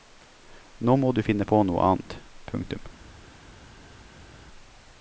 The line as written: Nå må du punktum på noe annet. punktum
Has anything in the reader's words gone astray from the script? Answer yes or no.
yes